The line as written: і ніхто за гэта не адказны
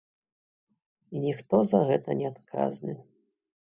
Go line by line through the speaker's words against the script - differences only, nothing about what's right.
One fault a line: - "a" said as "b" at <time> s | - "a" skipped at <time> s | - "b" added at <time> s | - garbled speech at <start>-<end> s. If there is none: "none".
none